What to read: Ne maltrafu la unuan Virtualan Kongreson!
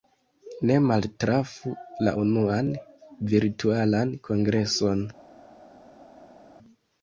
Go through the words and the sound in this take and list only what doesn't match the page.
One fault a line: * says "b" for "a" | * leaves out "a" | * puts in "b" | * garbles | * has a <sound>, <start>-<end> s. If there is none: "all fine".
all fine